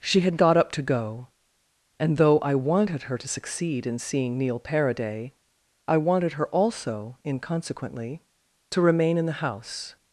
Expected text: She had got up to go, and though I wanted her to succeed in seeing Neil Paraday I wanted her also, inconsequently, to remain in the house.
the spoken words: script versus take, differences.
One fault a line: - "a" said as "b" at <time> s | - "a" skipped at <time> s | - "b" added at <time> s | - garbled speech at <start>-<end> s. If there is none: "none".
none